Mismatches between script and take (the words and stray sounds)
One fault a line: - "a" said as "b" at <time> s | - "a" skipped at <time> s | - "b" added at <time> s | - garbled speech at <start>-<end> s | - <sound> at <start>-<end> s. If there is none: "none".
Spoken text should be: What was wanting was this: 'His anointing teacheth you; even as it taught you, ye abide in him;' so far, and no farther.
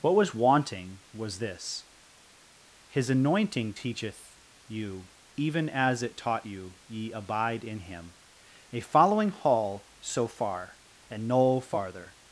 - "a following hall" added at 8.7 s